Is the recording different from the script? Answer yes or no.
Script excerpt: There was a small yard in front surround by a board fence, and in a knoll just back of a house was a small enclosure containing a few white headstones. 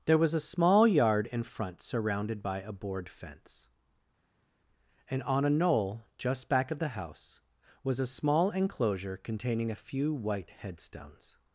yes